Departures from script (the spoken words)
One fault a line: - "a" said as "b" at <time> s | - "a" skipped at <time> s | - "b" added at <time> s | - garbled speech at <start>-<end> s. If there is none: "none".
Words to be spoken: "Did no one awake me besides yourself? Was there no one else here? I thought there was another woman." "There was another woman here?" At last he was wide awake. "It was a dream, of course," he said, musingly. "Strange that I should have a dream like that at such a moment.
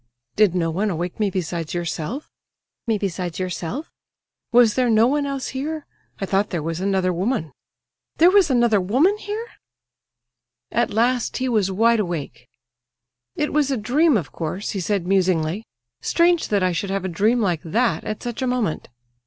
- "me besides yourself" added at 2.9 s